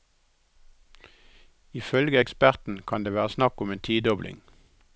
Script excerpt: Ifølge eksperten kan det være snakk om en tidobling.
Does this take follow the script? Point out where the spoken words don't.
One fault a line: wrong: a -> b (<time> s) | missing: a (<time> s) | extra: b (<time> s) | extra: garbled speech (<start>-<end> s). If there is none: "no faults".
no faults